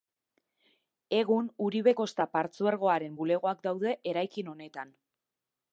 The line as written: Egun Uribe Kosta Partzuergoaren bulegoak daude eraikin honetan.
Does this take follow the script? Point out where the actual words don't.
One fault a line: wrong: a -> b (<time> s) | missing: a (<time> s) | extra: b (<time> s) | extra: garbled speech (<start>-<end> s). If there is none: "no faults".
no faults